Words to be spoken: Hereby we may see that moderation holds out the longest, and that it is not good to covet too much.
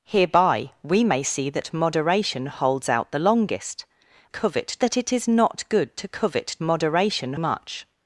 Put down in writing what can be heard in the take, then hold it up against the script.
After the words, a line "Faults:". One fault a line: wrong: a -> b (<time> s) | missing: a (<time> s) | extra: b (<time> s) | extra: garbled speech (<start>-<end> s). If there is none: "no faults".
Hereby we may see that moderation holds out the longest, covet that it is not good to covet moderation much.
Faults:
wrong: and -> covet (4.3 s)
wrong: too -> moderation (6.6 s)